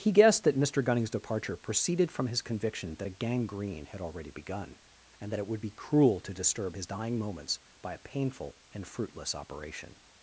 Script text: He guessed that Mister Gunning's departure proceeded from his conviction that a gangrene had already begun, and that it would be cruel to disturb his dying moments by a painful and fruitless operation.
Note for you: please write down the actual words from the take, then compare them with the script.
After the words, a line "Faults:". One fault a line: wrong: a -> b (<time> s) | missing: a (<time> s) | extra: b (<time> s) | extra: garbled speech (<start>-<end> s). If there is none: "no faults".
He guessed that Mister Gunning's departure proceeded from his conviction that a gangrene had already begun, and that it would be cruel to disturb his dying moments by a painful and fruitless operation.
Faults:
no faults